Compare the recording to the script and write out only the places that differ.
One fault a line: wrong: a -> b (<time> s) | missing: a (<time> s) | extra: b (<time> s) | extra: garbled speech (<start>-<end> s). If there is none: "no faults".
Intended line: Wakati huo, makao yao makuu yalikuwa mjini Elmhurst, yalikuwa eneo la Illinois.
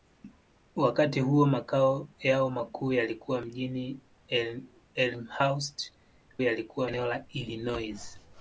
no faults